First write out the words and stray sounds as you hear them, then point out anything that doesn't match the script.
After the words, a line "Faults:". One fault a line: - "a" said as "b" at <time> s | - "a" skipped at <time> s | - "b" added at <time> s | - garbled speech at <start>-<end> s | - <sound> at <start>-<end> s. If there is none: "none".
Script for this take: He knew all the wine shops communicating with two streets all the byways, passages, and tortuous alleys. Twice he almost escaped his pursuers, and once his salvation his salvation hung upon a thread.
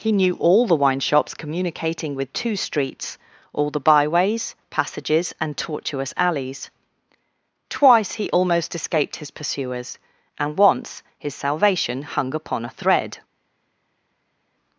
He knew all the wine shops communicating with two streets all the byways, passages, and tortuous alleys. Twice he almost escaped his pursuers, and once his salvation hung upon a thread.
Faults:
- "his salvation" skipped at 12.0 s